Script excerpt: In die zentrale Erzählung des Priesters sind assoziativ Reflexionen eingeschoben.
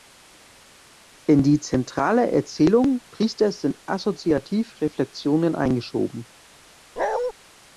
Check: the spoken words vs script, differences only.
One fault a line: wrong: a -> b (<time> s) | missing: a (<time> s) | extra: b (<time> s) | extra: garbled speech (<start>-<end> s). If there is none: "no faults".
missing: des (3.0 s)